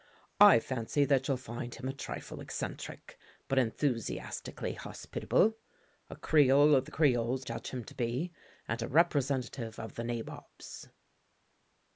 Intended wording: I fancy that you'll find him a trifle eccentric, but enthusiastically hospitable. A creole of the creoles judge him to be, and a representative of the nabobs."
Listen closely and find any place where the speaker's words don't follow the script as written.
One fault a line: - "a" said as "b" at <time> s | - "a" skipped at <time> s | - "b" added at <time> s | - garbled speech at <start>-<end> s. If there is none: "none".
none